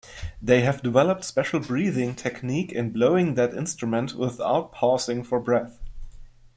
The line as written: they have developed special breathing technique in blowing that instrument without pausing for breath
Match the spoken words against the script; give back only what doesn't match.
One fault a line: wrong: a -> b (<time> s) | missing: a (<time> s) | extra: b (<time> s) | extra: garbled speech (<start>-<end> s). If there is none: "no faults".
no faults